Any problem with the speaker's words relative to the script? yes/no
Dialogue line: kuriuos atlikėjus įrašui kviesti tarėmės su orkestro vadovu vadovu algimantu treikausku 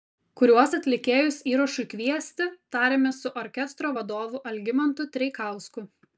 yes